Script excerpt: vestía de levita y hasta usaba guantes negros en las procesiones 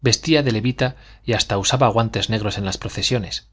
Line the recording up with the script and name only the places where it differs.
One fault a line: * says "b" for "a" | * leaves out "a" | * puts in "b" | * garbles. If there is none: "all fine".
all fine